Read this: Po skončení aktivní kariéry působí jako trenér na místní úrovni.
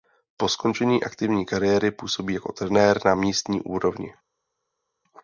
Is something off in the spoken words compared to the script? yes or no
no